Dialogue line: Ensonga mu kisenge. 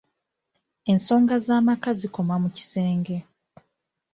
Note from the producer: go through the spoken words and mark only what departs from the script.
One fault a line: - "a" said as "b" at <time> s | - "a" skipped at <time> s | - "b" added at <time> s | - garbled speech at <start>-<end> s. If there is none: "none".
- "z'amaka zikoma" added at 1.4 s